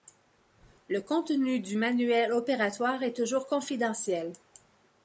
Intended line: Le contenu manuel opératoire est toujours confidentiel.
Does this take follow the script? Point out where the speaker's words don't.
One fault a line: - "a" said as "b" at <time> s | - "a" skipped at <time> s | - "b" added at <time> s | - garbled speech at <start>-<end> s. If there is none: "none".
- "du" added at 1.6 s